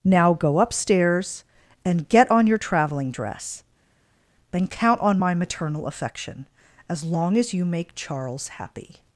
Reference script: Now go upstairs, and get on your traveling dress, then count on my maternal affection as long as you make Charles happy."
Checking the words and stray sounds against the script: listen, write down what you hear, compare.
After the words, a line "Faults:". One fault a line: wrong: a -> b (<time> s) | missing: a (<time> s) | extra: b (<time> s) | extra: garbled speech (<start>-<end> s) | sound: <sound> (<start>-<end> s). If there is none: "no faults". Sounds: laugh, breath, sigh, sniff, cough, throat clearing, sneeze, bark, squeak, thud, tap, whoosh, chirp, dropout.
Now go upstairs, and get on your traveling dress, then count on my maternal affection as long as you make Charles happy."
Faults:
no faults